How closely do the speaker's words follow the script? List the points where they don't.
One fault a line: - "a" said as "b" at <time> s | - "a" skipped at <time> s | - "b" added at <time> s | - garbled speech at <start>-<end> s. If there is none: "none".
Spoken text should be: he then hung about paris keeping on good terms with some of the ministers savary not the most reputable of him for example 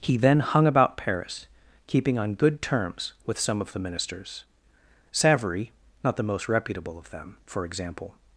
- "him" said as "them" at 7.1 s